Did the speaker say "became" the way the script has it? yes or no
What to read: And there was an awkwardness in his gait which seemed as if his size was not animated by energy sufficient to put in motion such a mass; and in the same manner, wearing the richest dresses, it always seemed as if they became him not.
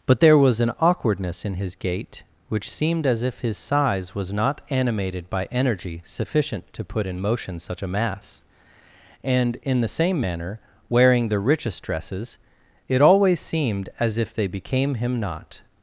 yes